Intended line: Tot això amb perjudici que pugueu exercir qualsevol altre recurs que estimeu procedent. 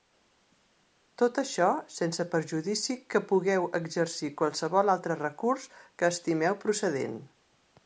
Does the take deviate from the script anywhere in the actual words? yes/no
yes